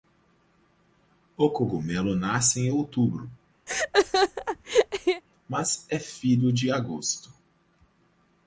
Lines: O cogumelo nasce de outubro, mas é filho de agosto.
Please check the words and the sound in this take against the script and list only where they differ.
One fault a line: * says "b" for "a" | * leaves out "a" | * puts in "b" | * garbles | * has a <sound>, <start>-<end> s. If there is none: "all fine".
* says "em" for "de"
* has a laugh, 3.7-5.2 s